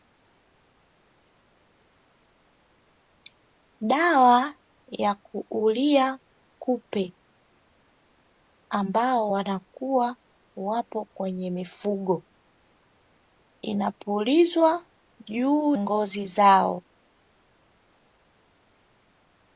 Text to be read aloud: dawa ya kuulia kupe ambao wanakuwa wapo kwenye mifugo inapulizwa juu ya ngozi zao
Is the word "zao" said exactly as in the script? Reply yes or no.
yes